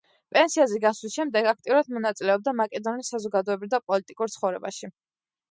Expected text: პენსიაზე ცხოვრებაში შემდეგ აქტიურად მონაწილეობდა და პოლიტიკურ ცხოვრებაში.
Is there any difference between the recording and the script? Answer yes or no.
yes